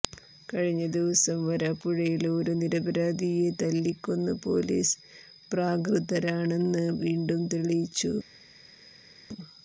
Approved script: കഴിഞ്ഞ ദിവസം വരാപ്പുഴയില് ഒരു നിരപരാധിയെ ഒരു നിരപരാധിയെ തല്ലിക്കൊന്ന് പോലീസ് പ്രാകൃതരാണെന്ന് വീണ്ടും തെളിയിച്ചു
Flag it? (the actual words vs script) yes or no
yes